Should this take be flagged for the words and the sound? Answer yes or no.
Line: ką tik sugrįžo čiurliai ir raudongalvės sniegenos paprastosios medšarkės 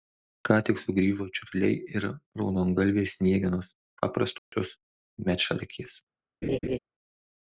yes